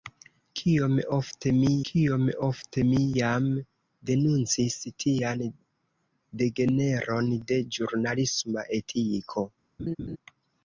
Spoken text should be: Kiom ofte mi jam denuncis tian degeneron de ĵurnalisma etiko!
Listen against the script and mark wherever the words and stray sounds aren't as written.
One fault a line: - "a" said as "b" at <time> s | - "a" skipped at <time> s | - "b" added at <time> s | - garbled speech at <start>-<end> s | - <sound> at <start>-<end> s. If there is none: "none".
- "kiom ofte mi" added at 1.9 s
- laugh at 9.8-10.2 s